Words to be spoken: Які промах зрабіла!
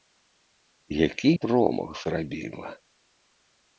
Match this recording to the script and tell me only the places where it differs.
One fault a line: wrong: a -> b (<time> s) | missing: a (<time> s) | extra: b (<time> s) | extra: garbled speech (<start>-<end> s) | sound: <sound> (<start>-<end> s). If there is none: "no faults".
no faults